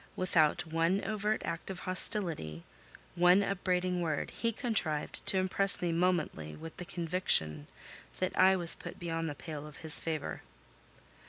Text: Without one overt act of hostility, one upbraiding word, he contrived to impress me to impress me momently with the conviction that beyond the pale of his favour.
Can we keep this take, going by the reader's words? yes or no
no